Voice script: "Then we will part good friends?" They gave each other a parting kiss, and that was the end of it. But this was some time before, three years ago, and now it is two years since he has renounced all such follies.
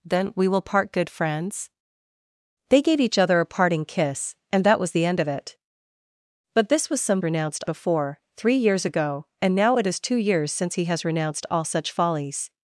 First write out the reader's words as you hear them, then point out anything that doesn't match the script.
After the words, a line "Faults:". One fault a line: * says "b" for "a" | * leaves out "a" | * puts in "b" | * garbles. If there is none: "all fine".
"Then we will part good friends?" They gave each other a parting kiss, and that was the end of it. But this was some renounced before, three years ago, and now it is two years since he has renounced all such follies.
Faults:
* says "renounced" for "time"